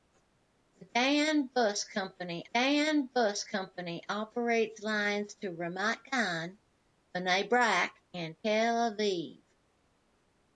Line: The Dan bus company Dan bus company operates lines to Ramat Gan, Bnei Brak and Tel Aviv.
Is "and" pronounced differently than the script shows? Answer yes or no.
no